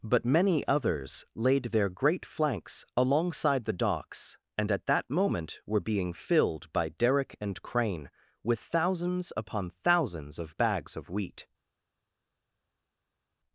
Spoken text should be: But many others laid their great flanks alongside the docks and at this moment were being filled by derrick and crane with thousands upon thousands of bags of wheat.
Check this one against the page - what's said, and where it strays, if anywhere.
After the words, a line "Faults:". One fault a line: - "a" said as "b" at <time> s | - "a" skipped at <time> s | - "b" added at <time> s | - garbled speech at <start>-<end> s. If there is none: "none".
But many others laid their great flanks alongside the docks and at that moment were being filled by derrick and crane with thousands upon thousands of bags of wheat.
Faults:
- "this" said as "that" at 4.9 s